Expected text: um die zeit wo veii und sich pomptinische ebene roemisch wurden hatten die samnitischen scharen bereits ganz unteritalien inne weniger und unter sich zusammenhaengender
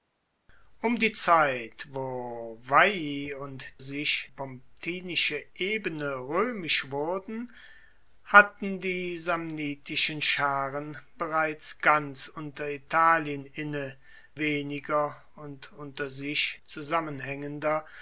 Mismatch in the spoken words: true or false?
false